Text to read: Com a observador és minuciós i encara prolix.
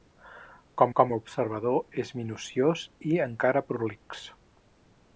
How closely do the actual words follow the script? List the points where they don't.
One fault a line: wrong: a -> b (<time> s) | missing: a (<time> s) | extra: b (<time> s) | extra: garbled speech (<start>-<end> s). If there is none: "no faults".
extra: com (1.0 s)